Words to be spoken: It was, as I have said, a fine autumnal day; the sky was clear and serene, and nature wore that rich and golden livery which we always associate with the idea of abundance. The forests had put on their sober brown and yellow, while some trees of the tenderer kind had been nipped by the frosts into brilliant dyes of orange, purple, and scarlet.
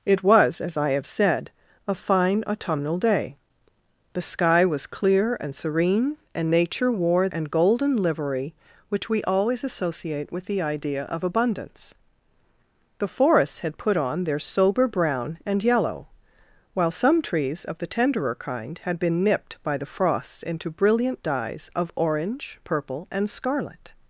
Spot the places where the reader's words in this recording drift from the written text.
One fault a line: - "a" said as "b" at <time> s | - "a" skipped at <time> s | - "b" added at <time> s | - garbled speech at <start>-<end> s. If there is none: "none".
- "that rich" skipped at 7.3 s